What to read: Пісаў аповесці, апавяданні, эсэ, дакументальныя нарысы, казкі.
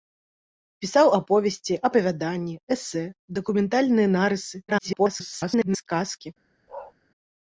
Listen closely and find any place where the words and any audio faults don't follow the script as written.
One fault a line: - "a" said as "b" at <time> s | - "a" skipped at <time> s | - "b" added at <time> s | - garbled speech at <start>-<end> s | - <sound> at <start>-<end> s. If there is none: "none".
- garbled speech at 4.7-5.9 s
- bark at 6.7-6.9 s